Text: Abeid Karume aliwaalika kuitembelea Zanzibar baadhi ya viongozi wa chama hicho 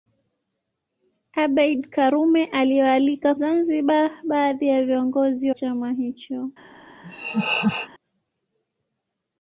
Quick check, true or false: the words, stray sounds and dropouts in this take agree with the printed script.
false